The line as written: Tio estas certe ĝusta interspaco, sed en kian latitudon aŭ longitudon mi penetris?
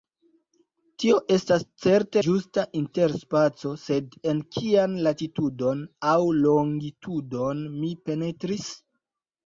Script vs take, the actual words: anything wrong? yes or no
no